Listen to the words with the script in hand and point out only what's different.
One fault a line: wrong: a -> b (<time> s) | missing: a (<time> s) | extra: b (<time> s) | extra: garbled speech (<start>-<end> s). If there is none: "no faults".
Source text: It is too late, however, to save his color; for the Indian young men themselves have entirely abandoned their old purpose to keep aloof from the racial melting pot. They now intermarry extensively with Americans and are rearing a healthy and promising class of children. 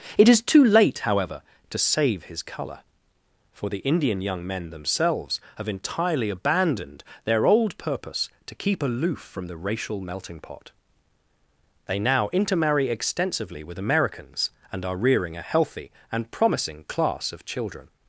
no faults